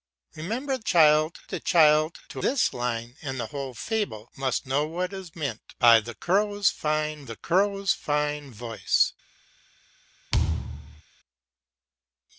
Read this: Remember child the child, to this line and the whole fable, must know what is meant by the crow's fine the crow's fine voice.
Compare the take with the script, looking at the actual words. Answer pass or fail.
pass